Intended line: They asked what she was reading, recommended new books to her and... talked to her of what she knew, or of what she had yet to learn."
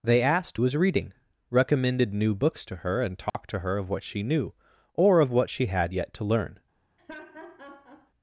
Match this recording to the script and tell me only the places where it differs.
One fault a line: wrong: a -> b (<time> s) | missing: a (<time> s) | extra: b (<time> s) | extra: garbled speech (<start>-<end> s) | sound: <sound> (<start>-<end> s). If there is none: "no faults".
missing: what she (0.6 s)
sound: dropout (3.3-3.3 s)
sound: laugh (7.0-8.1 s)